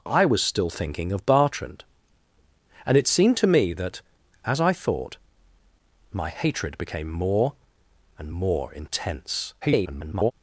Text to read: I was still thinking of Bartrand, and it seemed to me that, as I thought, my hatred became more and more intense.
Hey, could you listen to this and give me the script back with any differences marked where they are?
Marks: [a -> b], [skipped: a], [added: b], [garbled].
I was still thinking of Bartrand, and it seemed to me that, as I thought, my hatred became more and more intense. [garbled]